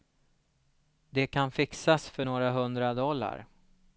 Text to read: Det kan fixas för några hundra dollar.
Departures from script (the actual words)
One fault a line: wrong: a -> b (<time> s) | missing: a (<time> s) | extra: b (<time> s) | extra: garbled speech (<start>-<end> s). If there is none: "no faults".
no faults